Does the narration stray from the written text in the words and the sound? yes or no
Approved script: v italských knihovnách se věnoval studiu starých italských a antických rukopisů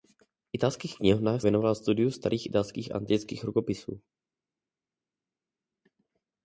yes